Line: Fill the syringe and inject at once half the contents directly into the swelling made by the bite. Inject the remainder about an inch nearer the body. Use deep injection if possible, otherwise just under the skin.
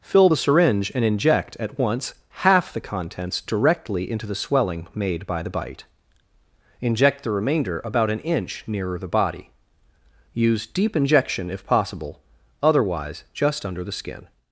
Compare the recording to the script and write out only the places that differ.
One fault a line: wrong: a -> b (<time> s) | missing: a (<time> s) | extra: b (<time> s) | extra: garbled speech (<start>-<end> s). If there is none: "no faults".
no faults